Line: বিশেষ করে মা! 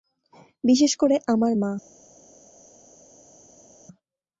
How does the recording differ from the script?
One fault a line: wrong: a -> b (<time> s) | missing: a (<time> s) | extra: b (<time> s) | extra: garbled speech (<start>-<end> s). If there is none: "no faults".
extra: আমার (1.3 s)